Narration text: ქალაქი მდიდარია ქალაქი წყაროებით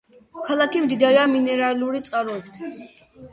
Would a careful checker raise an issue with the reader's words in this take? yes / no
yes